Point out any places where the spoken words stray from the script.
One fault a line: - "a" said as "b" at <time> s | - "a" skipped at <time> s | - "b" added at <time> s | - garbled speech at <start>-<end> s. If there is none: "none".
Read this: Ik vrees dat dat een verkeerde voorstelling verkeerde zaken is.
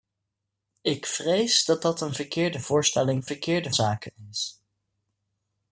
none